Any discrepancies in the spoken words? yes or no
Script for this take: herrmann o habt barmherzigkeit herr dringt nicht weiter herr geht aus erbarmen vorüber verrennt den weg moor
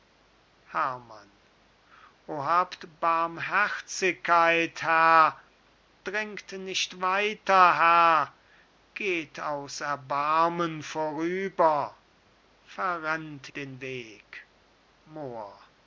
no